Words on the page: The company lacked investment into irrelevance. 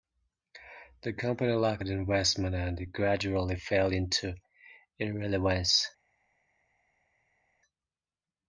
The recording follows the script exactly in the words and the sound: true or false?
false